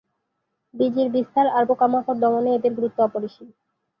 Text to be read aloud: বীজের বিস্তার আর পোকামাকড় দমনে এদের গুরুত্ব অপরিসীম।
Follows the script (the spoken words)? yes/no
yes